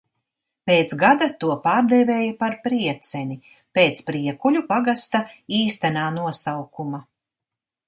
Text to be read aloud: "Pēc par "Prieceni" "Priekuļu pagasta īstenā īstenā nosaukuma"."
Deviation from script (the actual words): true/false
true